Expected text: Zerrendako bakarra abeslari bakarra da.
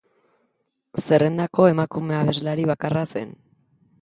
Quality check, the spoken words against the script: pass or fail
fail